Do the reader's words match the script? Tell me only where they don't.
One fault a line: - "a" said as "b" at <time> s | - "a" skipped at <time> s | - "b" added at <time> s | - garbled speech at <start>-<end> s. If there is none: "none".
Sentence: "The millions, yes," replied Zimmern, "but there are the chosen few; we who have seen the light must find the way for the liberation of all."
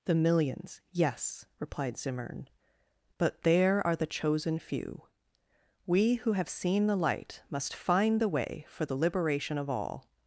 none